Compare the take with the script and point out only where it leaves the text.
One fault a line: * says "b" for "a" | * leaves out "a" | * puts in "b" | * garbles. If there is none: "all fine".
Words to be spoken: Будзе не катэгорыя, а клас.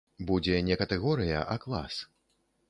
all fine